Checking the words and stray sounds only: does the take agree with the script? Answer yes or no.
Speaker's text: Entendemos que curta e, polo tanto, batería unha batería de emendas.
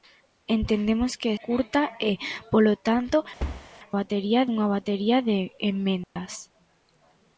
no